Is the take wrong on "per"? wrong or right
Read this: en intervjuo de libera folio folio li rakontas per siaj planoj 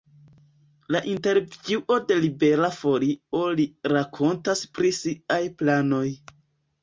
wrong